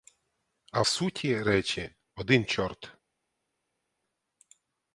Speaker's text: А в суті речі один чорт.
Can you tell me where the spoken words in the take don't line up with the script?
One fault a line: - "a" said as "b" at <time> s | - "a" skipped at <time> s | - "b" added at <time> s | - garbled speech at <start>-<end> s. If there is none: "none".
none